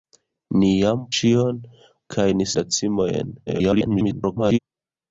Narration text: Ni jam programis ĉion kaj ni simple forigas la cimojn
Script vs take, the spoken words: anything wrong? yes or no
yes